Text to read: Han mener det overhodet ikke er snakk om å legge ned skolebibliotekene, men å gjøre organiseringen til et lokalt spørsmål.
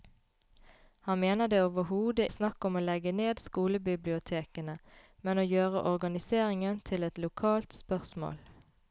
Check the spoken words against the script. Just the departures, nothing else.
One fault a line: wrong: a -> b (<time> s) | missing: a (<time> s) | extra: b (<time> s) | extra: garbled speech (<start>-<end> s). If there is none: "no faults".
missing: ikke (2.3 s)